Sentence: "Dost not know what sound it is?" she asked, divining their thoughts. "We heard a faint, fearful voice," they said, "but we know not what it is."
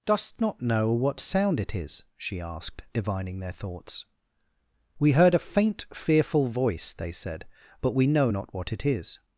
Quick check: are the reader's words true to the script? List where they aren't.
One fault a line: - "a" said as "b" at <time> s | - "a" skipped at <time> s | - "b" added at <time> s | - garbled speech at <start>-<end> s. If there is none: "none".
none